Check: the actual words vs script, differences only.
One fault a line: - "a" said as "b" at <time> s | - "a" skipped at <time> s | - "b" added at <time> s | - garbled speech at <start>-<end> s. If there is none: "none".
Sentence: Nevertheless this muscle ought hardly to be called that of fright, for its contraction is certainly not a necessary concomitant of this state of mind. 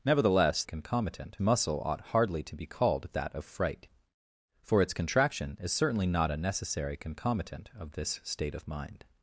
- "this" said as "concomitant" at 0.6 s